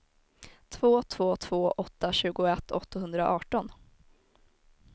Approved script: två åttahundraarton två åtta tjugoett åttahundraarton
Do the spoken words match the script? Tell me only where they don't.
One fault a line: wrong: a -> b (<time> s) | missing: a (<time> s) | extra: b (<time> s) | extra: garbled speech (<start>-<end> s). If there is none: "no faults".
wrong: åttahundraarton -> två (1.0 s)